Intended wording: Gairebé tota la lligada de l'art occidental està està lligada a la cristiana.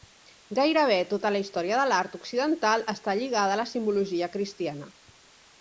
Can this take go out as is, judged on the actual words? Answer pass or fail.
fail